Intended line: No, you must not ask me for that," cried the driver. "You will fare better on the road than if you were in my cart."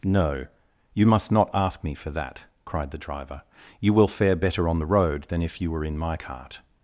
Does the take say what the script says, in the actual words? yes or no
yes